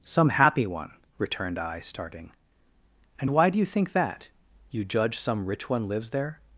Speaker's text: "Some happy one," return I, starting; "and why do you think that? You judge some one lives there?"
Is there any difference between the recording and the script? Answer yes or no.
yes